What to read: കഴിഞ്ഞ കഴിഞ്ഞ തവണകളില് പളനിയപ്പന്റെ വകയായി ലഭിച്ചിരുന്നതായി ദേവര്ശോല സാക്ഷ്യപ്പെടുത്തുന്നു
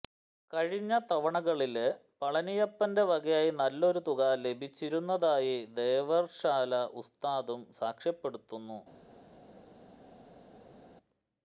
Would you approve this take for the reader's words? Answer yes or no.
no